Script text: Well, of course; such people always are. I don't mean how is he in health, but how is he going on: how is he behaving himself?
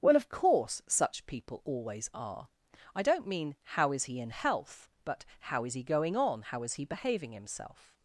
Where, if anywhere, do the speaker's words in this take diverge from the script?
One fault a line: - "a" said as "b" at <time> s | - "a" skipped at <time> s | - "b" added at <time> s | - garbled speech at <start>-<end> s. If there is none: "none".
none